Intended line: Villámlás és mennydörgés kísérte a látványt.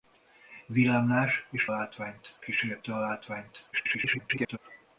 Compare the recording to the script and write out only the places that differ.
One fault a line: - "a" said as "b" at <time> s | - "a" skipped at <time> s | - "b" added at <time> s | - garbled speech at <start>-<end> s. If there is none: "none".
- "mennydörgés" said as "látványt" at 1.7 s
- garbled speech at 3.7-4.6 s